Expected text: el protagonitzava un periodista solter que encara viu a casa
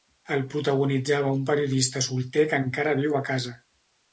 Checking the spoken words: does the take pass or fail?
pass